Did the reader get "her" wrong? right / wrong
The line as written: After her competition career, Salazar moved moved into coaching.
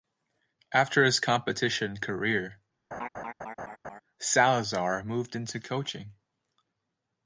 wrong